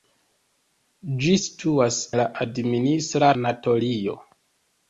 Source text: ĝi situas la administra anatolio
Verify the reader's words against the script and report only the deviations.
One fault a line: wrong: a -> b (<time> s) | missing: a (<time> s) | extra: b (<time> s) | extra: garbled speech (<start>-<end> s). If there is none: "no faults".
no faults